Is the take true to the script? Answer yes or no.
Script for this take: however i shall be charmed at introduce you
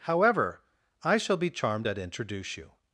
yes